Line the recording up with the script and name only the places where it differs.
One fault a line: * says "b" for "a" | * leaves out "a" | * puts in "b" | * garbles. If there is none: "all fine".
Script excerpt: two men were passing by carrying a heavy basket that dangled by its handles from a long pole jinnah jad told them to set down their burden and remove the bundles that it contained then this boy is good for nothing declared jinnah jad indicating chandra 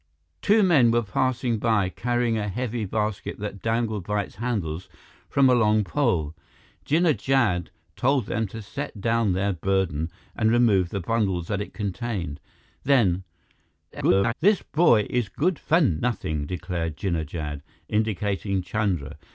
* garbles